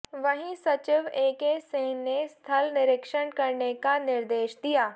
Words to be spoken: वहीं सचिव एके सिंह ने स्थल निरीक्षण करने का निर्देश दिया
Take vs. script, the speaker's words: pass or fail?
pass